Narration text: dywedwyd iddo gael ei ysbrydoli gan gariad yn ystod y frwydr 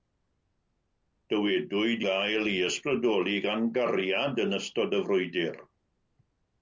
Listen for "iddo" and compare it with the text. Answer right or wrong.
wrong